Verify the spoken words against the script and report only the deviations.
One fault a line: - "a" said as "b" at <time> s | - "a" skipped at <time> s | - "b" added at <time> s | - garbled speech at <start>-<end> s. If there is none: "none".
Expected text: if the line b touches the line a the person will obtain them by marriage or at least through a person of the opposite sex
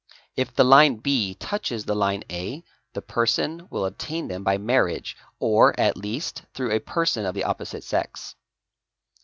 none